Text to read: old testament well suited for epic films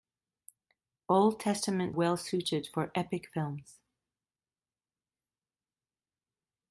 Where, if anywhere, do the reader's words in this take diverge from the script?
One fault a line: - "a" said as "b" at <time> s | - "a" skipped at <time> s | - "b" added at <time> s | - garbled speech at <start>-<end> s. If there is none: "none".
none